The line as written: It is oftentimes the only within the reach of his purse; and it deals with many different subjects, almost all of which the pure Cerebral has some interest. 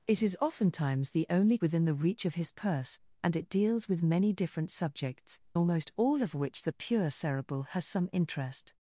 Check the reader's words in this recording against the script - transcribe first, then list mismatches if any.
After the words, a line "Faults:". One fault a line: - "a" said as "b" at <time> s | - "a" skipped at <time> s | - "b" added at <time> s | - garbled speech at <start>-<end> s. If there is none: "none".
It is oftentimes the only within the reach of his purse; and it deals with many different subjects, almost all of which the pure Cerebral has some interest.
Faults:
none